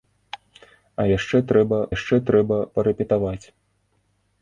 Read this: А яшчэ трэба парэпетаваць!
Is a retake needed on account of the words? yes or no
yes